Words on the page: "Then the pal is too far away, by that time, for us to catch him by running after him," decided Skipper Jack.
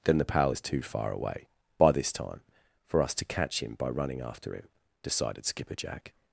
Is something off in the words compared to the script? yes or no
yes